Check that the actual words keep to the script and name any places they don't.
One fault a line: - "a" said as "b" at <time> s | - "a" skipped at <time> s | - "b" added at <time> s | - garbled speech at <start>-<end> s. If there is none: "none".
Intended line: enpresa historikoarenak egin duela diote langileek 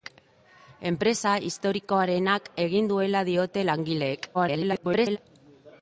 - garbled speech at 4.3-5.2 s